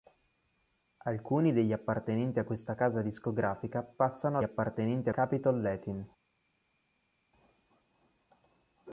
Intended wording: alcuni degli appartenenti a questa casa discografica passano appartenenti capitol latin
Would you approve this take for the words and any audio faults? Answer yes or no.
yes